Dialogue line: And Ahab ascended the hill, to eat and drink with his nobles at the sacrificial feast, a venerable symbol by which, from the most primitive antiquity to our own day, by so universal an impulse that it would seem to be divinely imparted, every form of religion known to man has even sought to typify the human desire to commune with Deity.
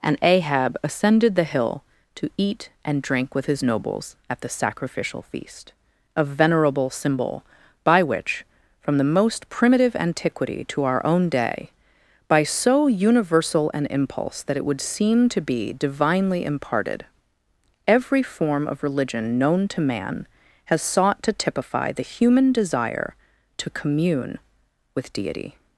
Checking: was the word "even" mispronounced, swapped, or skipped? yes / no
yes